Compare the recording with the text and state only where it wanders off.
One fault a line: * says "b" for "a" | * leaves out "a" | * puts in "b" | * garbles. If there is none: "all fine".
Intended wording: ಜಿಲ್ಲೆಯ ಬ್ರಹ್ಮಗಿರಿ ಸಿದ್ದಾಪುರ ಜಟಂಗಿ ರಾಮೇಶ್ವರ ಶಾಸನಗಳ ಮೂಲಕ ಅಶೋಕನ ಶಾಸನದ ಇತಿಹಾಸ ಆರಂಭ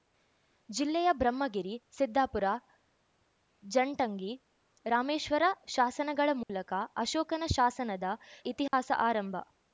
all fine